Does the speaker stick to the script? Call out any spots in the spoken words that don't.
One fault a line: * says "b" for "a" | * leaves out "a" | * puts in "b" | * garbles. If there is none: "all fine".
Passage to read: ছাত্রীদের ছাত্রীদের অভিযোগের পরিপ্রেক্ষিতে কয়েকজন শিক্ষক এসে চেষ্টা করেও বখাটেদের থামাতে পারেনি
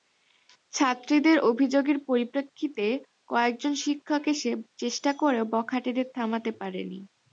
* leaves out "ছাত্রীদের"